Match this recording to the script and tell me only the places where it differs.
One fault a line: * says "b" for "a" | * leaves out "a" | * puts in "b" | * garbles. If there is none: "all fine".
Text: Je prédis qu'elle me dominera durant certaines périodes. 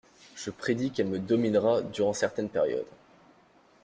all fine